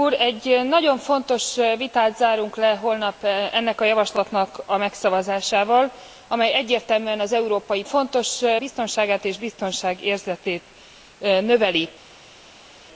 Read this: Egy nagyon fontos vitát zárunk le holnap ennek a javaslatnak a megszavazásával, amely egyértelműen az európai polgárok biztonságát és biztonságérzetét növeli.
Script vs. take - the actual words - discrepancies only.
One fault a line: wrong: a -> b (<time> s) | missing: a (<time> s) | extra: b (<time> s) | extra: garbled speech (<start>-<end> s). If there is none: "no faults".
wrong: polgárok -> fontos (7.8 s)